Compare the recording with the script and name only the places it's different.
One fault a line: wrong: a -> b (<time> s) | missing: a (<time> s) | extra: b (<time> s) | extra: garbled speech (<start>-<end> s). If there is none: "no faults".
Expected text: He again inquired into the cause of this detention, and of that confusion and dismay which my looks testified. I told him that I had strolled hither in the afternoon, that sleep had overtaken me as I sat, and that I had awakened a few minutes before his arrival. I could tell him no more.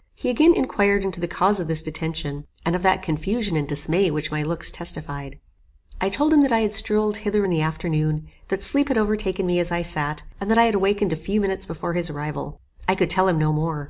no faults